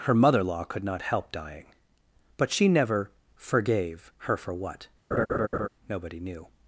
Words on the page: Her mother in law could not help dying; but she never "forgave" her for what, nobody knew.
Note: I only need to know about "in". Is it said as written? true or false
false